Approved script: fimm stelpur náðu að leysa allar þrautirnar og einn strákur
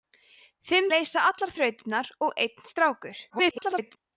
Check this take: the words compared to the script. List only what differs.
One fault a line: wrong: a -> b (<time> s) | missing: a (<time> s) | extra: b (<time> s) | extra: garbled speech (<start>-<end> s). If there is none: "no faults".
missing: stelpur náðu að (0.9 s)
extra: garbled speech (3.3-4.0 s)